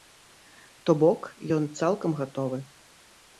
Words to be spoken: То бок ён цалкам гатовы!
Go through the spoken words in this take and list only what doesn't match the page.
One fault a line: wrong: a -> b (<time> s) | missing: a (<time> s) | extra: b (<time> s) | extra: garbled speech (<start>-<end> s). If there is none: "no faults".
no faults